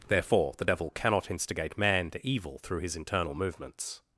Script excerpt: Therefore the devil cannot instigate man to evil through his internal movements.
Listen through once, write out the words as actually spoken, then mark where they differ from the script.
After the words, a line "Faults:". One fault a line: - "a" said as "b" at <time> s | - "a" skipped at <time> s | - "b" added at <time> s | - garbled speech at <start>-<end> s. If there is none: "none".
Therefore the devil cannot instigate man to evil through his internal movements.
Faults:
none